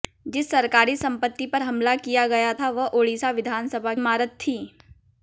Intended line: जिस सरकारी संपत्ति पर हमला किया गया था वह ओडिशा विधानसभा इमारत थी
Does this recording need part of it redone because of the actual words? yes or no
no